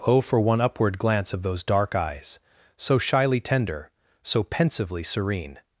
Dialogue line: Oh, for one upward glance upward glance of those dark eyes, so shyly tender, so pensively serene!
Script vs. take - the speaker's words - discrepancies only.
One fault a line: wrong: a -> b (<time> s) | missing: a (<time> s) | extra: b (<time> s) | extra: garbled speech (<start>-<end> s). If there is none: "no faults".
missing: upward glance (1.3 s)